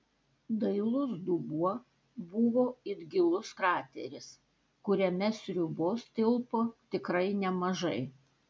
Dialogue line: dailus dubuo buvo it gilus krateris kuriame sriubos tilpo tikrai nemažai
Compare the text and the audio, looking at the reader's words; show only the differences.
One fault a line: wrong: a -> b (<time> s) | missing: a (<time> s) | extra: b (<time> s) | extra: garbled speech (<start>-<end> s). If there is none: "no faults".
no faults